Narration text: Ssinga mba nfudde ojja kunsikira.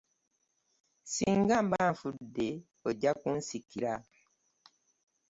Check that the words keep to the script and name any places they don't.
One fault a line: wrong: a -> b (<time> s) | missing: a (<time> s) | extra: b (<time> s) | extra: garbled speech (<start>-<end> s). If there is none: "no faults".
no faults